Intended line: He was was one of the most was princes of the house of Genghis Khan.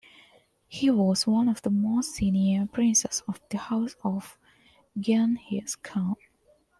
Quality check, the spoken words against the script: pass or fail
fail